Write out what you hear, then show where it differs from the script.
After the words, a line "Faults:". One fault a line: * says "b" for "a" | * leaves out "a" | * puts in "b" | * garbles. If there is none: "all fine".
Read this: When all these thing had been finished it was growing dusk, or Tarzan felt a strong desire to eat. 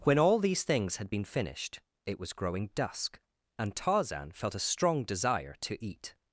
When all these things had been finished it was growing dusk, and Tarzan felt a strong desire to eat.
Faults:
* says "things" for "thing"
* says "and" for "or"